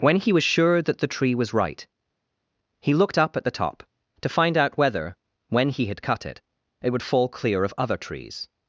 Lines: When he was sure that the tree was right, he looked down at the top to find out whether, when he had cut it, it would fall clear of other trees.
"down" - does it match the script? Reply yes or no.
no